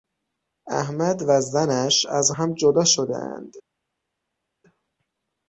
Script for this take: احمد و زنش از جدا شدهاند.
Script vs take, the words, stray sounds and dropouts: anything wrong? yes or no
yes